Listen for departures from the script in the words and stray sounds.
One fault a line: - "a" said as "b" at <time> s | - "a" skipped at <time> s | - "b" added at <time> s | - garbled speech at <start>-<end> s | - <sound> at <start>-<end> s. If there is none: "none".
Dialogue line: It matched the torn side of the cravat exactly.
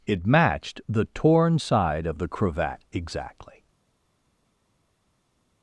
none